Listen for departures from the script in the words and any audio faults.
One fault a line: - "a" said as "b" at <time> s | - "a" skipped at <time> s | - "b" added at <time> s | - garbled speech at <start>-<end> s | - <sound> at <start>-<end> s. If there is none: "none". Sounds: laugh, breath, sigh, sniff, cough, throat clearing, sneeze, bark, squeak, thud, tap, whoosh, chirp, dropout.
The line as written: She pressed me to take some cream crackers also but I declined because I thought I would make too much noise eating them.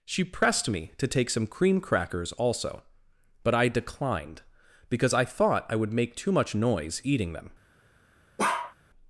- bark at 8.4-8.7 s